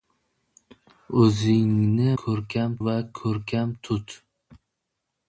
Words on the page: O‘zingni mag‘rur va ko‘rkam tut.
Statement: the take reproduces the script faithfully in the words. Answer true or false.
false